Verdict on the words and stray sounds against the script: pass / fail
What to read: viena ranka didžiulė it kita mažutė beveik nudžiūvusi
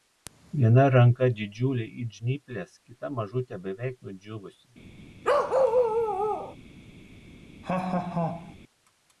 fail